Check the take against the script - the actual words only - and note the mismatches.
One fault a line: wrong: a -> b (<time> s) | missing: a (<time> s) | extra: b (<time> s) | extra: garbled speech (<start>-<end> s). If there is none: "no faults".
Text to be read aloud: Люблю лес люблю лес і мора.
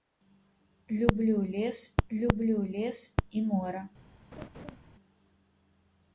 no faults